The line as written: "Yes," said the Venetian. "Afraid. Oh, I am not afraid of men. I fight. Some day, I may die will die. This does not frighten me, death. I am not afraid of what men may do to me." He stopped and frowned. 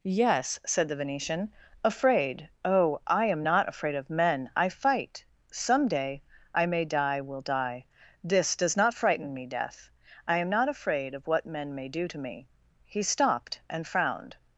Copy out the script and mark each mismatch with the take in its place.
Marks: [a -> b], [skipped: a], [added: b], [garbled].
"Yes," said the Venetian. "Afraid. Oh, I am not afraid of men. I fight. Some day, I may die will die. This does not frighten me, death. I am not afraid of what men may do to me." He stopped and frowned.